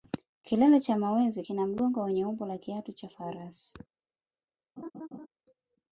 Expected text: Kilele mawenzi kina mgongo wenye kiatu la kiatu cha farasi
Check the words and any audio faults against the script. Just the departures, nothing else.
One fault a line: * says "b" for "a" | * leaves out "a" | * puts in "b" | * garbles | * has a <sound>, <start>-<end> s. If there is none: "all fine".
* puts in "cha"
* says "umbo" for "kiatu"
* has a laugh, 4.8-5.3 s